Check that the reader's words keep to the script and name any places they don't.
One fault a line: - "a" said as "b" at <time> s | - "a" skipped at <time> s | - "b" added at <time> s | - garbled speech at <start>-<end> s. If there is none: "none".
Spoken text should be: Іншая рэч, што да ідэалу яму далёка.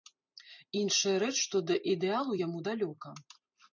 none